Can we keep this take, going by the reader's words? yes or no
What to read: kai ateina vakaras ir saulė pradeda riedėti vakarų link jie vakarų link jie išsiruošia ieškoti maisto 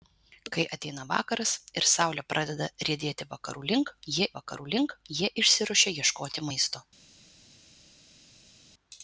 yes